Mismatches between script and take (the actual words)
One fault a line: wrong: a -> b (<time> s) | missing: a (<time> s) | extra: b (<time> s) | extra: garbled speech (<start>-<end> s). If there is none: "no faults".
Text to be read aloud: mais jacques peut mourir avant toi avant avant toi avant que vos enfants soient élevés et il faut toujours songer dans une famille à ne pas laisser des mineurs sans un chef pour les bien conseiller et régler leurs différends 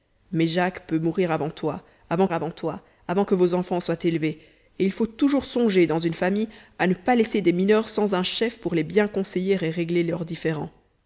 no faults